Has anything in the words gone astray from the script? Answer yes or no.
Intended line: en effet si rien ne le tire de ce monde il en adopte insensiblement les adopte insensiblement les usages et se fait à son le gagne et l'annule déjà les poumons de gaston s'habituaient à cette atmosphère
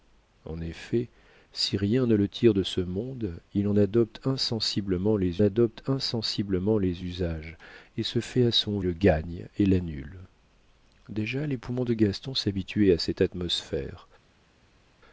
no